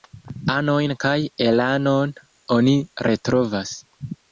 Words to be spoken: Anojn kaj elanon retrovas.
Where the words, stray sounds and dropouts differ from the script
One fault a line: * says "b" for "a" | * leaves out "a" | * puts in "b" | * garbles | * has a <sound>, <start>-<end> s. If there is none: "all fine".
* puts in "oni"